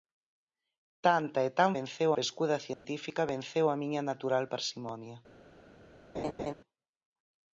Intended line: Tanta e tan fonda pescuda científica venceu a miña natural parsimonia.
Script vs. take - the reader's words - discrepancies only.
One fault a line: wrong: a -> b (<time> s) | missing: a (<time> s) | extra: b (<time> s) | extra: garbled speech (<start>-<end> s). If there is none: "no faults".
wrong: fonda -> venceu (1.8 s)